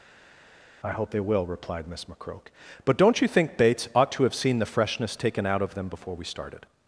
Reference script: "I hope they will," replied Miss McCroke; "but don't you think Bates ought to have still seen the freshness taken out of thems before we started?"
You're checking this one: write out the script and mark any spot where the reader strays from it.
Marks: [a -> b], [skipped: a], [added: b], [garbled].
"I hope they will," replied Miss McCroke; "but don't you think Bates ought to have [skipped: still] seen the freshness taken out of [thems -> them] before we started?"